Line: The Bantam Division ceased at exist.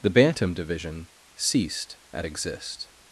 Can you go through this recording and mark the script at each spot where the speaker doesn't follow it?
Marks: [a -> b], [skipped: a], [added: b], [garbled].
The Bantam Division ceased at exist.